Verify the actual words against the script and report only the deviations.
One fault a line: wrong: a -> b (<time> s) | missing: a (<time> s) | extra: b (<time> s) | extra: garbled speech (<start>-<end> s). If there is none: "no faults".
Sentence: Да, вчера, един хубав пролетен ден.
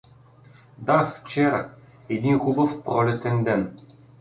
no faults